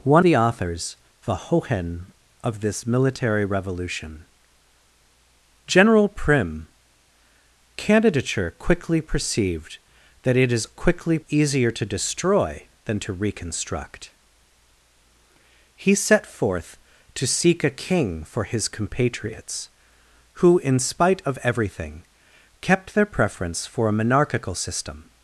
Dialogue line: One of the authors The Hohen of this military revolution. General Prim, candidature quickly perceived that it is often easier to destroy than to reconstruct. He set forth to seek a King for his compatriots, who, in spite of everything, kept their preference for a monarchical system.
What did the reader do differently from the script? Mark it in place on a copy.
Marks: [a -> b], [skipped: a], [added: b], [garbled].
One [skipped: of] the authors The Hohen of this military revolution. General Prim, candidature quickly perceived that it is [often -> quickly] easier to destroy than to reconstruct. He set forth to seek a King for his compatriots, who, in spite of everything, kept their preference for a monarchical system.